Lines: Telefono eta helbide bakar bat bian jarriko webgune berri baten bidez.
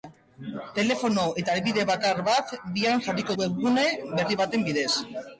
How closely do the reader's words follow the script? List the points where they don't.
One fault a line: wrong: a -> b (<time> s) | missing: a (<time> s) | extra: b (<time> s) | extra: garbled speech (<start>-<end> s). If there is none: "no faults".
no faults